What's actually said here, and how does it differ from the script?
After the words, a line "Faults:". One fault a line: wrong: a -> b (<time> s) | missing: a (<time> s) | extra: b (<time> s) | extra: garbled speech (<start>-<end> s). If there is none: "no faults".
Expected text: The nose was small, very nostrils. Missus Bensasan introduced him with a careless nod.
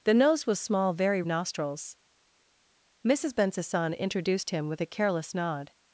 The nose was small, very nostrils. Missus Bensasan introduced him with a careless nod.
Faults:
no faults